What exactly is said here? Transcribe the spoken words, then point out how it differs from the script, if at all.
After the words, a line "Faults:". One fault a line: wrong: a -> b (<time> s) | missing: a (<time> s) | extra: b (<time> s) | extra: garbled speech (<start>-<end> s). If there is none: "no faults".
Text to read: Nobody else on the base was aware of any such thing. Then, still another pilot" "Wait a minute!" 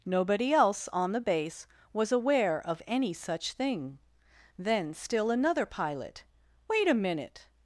Nobody else on the base was aware of any such thing. Then, still another pilot" "Wait a minute!"
Faults:
no faults